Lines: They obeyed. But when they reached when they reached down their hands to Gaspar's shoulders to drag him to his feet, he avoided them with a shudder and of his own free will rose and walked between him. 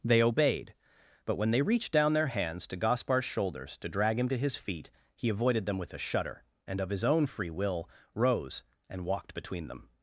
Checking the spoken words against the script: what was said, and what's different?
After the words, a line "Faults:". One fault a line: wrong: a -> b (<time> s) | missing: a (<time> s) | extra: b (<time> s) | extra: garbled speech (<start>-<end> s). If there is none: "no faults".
They obeyed. But when they reached down their hands to Gaspar's shoulders to drag him to his feet, he avoided them with a shudder and of his own free will rose and walked between them.
Faults:
missing: when they reached (1.9 s)
wrong: him -> them (9.7 s)